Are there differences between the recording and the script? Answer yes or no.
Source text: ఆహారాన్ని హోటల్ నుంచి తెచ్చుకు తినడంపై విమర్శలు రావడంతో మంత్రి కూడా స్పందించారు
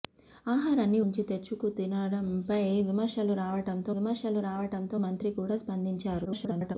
yes